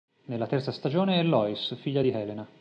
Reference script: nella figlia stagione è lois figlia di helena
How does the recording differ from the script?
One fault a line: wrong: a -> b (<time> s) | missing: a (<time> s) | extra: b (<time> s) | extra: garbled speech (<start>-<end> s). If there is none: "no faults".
wrong: figlia -> terza (0.5 s)